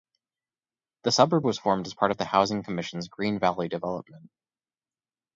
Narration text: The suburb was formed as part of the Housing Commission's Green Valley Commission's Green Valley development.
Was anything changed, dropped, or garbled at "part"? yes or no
no